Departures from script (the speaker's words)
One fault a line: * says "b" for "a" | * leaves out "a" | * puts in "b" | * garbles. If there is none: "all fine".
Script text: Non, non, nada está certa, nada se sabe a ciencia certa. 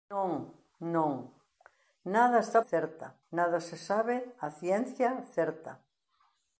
all fine